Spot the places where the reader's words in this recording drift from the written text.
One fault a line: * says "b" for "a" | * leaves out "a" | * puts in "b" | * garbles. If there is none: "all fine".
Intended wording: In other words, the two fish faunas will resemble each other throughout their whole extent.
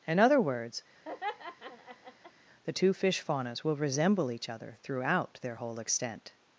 all fine